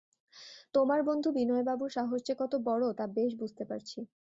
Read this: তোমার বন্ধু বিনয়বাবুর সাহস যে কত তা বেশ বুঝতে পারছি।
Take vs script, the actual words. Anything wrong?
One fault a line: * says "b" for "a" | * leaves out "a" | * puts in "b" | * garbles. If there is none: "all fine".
* puts in "বড়ো"